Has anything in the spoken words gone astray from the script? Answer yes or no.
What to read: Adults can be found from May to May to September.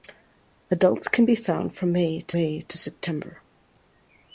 no